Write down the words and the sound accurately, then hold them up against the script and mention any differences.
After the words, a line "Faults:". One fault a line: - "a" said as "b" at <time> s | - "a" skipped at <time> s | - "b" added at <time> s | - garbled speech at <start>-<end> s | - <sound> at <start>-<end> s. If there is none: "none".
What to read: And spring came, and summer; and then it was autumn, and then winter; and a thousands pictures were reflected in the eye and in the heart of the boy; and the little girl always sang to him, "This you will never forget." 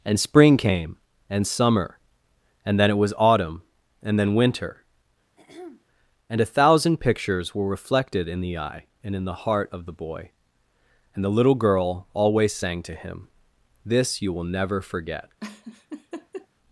And spring came, and summer; and then it was autumn, and then winter; and a thousand pictures were reflected in the eye and in the heart of the boy; and the little girl always sang to him, "This you will never forget."
Faults:
- throat clearing at 5.4-5.8 s
- "thousands" said as "thousand" at 6.5 s
- laugh at 15.4-16.5 s